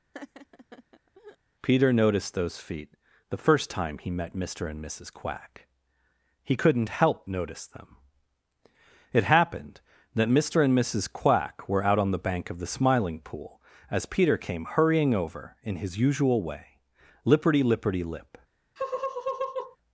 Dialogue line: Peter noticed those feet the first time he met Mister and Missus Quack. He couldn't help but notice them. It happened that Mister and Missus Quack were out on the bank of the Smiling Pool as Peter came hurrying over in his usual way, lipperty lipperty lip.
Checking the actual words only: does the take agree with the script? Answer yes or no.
no